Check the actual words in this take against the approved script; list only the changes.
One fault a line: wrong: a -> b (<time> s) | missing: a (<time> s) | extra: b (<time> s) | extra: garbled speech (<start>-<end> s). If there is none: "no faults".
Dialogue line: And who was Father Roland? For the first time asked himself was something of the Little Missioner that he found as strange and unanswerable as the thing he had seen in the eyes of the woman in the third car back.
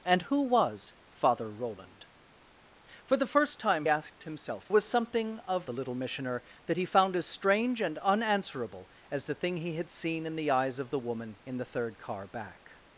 no faults